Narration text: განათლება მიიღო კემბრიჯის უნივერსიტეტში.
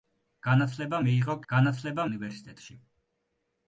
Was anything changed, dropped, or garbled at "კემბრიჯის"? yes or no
yes